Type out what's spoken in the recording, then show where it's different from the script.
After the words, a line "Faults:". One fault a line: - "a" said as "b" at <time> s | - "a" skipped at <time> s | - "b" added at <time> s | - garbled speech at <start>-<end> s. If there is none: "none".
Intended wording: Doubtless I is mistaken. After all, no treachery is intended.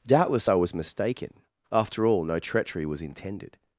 Doubtless I was mistaken. After all, no treachery was intended.
Faults:
- "is" said as "was" at 0.5 s
- "is" said as "was" at 2.9 s